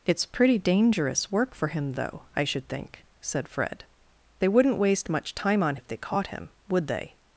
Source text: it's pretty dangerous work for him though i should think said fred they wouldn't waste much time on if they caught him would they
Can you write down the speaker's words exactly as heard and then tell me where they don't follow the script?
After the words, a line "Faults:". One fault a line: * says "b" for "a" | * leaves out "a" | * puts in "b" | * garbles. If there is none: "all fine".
it's pretty dangerous work for him though i should think said fred they wouldn't waste much time on if they caught him would they
Faults:
all fine